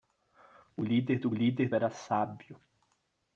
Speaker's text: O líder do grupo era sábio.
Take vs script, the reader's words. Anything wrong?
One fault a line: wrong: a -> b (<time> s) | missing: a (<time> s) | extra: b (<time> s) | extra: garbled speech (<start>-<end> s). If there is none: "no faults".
wrong: grupo -> líder (1.3 s)